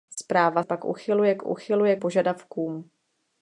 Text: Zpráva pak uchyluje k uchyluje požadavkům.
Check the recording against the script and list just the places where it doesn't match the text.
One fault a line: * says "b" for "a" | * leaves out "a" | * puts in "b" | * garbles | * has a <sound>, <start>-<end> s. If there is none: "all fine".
all fine